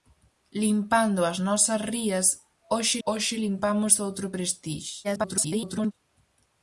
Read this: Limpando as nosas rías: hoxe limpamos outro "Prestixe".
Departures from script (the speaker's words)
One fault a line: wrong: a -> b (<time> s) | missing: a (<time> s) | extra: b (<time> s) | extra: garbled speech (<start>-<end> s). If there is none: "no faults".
extra: hoxe (3.1 s)
extra: garbled speech (5.0-5.9 s)